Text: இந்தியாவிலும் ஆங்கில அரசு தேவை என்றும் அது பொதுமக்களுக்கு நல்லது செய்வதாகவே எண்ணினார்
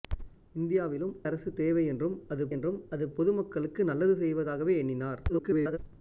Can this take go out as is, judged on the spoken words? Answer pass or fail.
fail